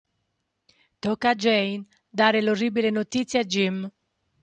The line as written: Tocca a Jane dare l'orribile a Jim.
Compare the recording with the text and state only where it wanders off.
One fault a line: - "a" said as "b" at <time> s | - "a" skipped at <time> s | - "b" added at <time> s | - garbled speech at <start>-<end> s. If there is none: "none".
- "notizia" added at 2.9 s